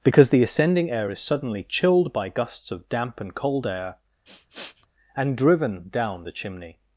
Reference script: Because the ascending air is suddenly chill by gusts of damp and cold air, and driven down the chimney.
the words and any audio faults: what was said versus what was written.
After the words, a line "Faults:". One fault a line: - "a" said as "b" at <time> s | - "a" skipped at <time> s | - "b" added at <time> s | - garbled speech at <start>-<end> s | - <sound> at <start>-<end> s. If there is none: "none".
Because the ascending air is suddenly chilled by gusts of damp and cold air, and driven down the chimney.
Faults:
- "chill" said as "chilled" at 1.6 s
- sniff at 4.3-4.9 s